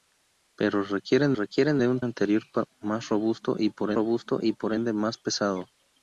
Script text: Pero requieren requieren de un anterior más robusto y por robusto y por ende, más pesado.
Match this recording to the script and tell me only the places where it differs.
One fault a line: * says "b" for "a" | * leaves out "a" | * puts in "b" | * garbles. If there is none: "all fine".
all fine